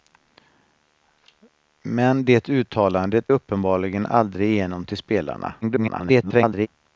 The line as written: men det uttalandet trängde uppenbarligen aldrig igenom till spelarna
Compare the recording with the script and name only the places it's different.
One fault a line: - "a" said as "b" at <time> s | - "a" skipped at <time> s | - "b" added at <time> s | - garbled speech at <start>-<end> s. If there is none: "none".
- "trängde" skipped at 3.3 s
- garbled speech at 5.6-6.7 s